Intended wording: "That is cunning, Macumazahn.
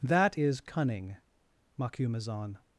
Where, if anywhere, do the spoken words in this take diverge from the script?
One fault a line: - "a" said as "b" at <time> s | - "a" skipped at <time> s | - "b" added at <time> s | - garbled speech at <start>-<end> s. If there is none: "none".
none